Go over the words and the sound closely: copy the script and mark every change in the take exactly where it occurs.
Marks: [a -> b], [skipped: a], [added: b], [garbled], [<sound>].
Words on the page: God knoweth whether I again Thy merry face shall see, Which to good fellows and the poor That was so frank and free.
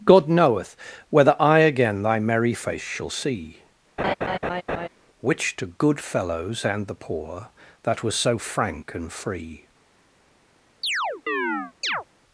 God knoweth whether I again Thy merry face shall see, [laugh] Which to good fellows and the poor That was so frank and free. [chirp]